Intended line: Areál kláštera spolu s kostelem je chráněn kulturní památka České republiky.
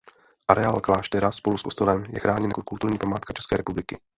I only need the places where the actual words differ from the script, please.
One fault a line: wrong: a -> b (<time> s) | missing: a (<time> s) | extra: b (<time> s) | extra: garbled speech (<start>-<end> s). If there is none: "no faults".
extra: jako (2.5 s)